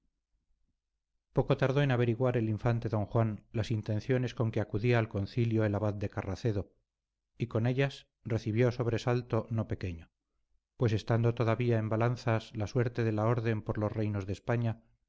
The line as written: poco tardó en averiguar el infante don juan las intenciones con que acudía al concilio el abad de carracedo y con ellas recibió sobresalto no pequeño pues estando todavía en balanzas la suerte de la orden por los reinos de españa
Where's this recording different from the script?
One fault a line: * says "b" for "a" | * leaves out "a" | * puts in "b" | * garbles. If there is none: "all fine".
all fine